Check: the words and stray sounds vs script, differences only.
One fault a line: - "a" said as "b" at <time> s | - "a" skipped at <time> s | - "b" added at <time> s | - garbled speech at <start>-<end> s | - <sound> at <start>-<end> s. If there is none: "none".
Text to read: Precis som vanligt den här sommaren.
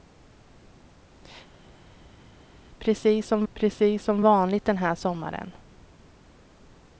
- "precis som" added at 3.5 s